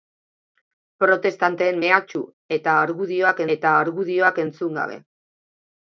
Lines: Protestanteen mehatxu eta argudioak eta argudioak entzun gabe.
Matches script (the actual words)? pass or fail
pass